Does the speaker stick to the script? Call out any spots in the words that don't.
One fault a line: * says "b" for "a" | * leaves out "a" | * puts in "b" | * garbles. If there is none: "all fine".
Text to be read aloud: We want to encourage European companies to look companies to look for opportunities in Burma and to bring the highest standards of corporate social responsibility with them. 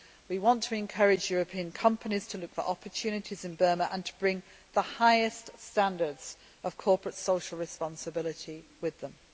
* leaves out "companies to look"